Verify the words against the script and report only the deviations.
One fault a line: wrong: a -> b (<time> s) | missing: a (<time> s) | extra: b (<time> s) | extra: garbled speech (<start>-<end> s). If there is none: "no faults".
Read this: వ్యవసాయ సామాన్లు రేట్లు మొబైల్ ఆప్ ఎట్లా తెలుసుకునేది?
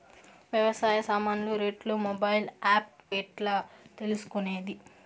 no faults